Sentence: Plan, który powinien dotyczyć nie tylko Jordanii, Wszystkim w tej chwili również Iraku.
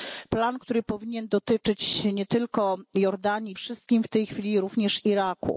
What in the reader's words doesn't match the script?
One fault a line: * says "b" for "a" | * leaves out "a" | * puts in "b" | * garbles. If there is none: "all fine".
all fine